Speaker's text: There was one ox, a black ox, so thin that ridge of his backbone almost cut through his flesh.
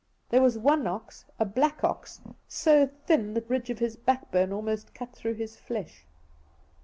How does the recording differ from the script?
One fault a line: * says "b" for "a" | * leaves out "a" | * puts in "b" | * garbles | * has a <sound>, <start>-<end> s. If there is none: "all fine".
all fine